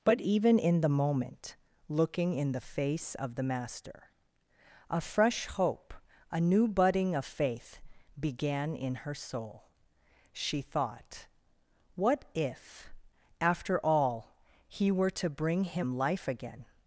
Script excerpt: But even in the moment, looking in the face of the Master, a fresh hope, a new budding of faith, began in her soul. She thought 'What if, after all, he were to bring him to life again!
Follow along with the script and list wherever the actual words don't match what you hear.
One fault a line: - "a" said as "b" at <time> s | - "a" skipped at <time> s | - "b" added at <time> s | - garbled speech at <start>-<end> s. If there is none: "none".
- "to" skipped at 16.0 s